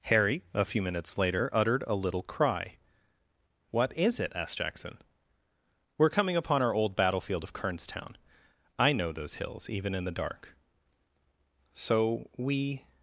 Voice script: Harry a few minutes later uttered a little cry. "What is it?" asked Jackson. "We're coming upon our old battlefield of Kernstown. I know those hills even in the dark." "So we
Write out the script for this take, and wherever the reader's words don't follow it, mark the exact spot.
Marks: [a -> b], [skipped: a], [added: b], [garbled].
Harry a few minutes later uttered a little cry. "What is it?" asked Jackson. "We're coming upon our old battlefield of Kernstown. I know those hills even in the dark." "So we